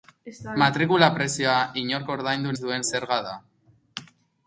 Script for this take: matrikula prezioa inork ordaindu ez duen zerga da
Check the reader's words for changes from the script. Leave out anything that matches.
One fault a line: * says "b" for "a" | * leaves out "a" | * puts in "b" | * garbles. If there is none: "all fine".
all fine